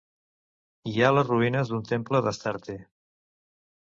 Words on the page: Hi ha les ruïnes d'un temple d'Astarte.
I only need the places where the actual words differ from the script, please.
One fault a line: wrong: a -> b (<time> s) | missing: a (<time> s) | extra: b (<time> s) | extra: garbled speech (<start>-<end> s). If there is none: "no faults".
no faults